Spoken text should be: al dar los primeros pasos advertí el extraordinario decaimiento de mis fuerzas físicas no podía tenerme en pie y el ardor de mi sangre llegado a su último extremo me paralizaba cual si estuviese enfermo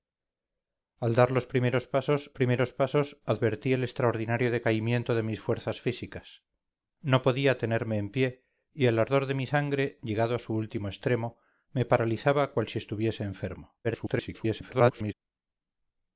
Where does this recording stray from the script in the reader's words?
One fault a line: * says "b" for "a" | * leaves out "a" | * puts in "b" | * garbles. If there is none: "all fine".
* puts in "primeros pasos"
* garbles